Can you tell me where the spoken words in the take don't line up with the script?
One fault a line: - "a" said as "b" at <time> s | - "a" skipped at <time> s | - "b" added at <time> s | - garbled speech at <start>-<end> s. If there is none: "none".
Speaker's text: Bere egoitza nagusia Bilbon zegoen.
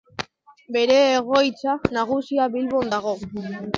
- "zegoen" said as "dago" at 2.9 s